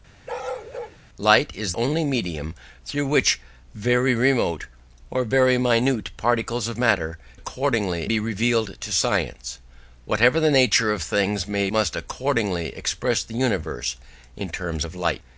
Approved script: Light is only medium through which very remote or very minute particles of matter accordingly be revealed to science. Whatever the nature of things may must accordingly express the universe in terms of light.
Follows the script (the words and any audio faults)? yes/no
no